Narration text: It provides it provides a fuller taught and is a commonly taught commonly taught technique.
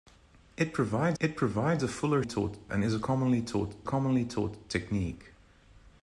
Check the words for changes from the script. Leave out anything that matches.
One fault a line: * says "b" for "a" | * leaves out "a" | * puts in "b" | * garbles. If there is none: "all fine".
all fine